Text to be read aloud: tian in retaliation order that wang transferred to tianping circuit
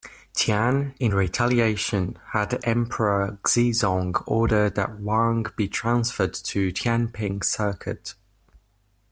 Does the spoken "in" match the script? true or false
true